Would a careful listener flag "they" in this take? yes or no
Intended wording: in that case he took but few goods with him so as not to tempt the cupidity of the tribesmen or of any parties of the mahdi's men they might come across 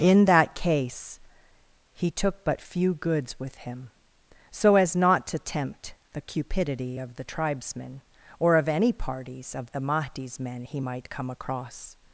yes